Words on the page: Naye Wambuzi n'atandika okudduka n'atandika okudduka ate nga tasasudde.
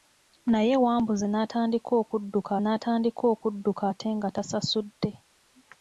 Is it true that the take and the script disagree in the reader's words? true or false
false